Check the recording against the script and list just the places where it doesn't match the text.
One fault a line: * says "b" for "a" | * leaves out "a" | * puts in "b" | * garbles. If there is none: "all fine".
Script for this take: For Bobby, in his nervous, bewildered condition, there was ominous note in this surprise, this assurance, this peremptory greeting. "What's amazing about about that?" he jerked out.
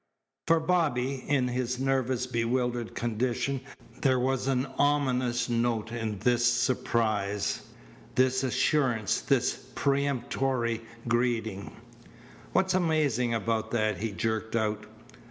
* puts in "an"
* leaves out "about"